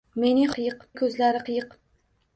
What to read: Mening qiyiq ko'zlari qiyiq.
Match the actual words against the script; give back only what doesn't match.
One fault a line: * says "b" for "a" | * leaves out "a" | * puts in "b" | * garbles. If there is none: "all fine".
all fine